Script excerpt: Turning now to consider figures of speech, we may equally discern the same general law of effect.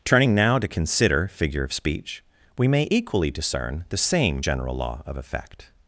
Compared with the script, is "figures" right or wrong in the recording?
wrong